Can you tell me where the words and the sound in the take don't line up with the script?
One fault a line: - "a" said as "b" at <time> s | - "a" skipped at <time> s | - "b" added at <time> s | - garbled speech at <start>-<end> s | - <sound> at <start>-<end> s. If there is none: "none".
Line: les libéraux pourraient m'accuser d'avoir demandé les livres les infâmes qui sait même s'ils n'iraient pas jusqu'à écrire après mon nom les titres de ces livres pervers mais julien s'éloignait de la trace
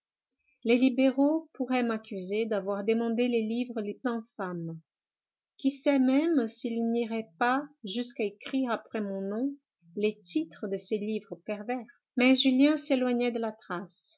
none